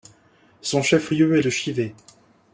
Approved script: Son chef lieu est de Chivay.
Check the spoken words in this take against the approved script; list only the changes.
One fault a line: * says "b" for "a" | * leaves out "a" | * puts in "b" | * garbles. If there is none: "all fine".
all fine